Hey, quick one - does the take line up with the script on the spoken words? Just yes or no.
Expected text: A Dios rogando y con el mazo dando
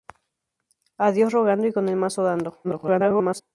no